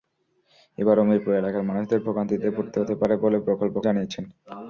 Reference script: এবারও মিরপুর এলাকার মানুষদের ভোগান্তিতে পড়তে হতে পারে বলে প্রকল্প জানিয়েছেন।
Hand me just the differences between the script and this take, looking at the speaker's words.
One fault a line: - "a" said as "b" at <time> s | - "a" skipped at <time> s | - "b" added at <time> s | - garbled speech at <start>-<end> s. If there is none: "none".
none